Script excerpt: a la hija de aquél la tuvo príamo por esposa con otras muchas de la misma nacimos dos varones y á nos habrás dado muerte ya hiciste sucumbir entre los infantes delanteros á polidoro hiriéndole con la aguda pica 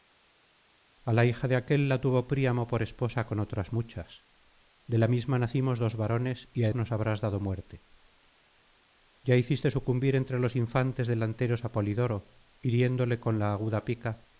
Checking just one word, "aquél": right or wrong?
right